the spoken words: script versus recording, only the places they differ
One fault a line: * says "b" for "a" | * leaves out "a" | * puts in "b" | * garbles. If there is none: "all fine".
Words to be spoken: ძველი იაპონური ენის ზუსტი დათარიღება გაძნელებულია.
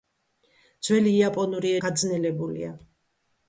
* leaves out "ენის ზუსტი დათარიღება"